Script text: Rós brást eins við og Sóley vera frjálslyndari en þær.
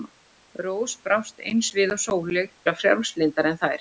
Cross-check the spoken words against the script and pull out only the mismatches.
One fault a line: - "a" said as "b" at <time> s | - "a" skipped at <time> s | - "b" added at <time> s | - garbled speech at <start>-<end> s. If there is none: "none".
none